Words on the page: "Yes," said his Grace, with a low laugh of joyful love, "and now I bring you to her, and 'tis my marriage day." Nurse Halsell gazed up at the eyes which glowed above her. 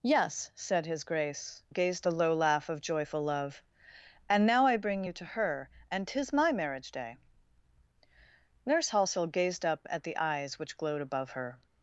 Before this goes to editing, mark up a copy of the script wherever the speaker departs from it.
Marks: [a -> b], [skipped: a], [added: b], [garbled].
"Yes," said his Grace, [with -> gazed] a low laugh of joyful love, "and now I bring you to her, and 'tis my marriage day." Nurse Halsell gazed up at the eyes which glowed above her.